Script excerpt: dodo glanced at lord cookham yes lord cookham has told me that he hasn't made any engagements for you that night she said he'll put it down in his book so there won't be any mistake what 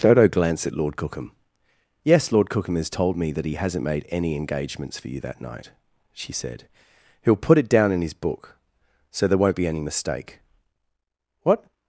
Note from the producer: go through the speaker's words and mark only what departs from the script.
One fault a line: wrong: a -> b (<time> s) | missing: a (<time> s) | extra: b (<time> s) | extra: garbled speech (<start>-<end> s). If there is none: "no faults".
no faults